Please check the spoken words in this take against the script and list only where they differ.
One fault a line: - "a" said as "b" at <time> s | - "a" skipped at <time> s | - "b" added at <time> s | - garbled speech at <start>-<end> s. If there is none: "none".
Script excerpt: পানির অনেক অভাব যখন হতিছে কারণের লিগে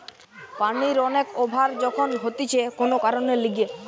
- "কোন" added at 2.8 s